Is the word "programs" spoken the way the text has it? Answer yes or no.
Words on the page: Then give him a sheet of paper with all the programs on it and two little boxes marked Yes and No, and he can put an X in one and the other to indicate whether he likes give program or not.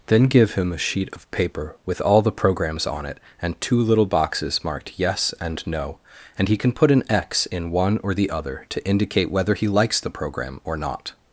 yes